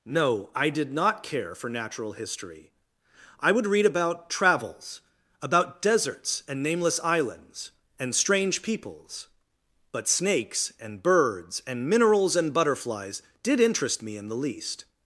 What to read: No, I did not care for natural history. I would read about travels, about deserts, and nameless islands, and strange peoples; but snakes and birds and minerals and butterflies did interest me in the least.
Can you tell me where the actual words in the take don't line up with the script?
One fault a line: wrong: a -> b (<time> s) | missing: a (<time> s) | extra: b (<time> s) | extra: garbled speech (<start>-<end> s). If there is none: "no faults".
no faults